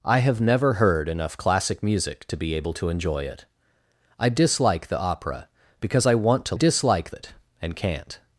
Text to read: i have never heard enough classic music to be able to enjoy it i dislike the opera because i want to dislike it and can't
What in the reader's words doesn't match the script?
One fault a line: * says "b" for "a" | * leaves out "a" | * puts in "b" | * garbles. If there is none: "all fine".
all fine